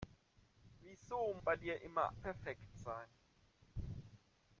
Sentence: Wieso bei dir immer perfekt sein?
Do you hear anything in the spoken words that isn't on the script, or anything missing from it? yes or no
no